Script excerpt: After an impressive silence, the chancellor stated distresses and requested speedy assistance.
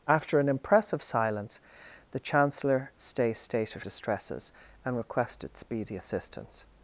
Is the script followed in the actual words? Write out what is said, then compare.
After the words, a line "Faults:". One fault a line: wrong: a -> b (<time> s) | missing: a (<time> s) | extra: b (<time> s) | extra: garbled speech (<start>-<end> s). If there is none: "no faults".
After an impressive silence, the chancellor stated distresses and requested speedy assistance.
Faults:
no faults